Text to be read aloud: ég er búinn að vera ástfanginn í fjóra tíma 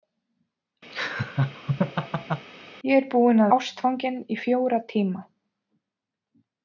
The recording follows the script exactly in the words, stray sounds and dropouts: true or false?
false